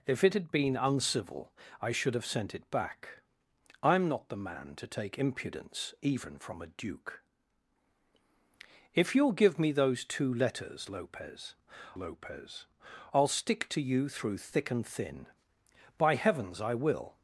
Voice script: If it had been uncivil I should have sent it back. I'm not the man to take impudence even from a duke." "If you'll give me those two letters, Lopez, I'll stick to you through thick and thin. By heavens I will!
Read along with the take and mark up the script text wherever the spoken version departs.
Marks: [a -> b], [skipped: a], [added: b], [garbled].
If it had been uncivil I should have sent it back. I'm not the man to take impudence even from a duke." "If you'll give me those two letters, Lopez, [added: Lopez] I'll stick to you through thick and thin. By heavens I will!